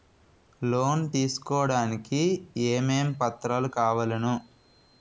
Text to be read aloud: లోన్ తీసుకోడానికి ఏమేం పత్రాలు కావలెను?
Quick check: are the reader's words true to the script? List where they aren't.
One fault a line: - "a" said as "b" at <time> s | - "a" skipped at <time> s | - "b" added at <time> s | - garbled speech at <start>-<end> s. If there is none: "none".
none